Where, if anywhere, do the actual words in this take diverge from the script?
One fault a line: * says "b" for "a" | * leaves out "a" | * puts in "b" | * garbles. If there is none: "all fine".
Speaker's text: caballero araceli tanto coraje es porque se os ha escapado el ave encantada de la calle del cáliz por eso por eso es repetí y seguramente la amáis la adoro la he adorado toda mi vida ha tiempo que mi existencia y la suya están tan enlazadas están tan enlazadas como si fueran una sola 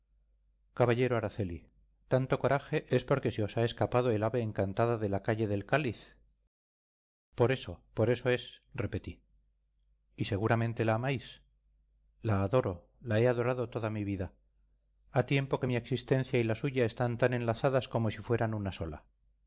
* leaves out "están tan enlazadas"